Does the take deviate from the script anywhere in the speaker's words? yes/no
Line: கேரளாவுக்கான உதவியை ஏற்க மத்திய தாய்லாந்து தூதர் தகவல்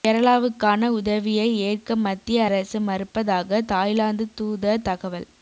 yes